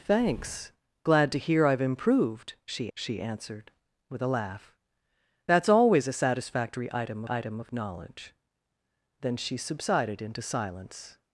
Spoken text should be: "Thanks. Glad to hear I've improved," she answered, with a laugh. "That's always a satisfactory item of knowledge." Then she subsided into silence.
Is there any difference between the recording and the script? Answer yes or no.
yes